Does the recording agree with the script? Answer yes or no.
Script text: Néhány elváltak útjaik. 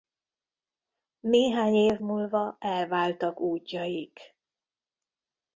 no